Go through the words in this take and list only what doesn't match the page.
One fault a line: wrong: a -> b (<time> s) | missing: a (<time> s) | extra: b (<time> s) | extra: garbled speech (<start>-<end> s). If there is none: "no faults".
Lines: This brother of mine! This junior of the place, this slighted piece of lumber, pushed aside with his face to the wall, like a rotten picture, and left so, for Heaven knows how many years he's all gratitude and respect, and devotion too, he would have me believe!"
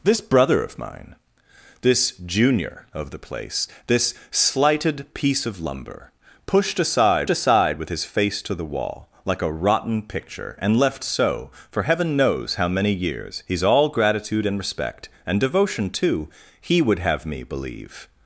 extra: aside (7.3 s)